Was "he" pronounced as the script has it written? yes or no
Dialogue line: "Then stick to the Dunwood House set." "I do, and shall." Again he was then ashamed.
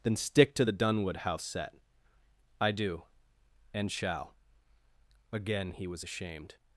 yes